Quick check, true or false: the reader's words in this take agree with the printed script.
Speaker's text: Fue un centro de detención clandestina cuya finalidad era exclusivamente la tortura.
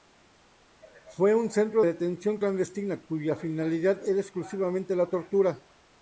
false